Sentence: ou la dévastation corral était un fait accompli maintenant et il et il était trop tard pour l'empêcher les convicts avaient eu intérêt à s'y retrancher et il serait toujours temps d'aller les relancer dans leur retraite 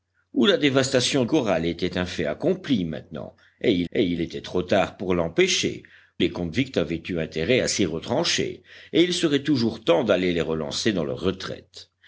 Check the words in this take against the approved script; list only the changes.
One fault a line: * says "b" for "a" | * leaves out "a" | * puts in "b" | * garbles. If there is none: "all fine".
all fine